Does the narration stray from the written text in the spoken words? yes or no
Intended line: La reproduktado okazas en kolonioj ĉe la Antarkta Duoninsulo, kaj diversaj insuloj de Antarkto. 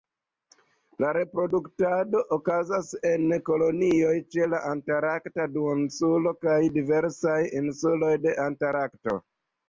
no